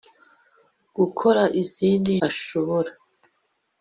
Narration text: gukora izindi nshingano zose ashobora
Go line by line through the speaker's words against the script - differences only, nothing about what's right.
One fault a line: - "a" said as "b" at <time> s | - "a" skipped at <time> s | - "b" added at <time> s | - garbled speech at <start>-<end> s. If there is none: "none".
- "nshingano zose" skipped at 2.1 s